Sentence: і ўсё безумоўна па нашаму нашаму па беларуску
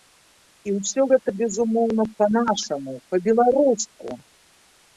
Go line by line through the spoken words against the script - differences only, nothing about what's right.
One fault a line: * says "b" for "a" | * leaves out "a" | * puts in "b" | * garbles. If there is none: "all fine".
* puts in "гэта"
* leaves out "нашаму"